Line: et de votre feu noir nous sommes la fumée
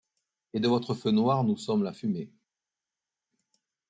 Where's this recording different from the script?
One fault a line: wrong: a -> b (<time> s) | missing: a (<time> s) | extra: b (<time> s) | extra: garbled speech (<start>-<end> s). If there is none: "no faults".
no faults